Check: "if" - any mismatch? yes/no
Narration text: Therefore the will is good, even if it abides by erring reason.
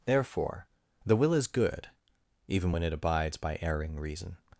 yes